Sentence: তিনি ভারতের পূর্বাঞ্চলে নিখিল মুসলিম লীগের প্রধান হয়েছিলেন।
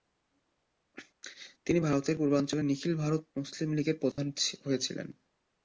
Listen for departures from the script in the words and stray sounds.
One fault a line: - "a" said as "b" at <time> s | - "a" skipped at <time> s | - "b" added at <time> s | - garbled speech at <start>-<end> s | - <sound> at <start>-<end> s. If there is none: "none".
- "ভারত" added at 3.0 s
- dropout at 4.1-4.2 s